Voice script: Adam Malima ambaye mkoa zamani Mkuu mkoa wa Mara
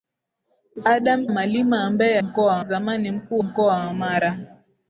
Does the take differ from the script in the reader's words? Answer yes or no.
no